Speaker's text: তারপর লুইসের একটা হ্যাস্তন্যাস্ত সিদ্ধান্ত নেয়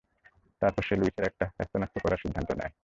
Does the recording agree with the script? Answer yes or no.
no